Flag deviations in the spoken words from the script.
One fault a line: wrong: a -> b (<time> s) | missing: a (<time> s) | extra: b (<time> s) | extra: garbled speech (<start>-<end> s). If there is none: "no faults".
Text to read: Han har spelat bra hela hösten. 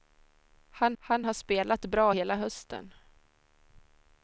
extra: han (1.0 s)